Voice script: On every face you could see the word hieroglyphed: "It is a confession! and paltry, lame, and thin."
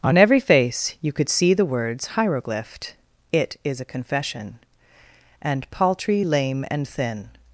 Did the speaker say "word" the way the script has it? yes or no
no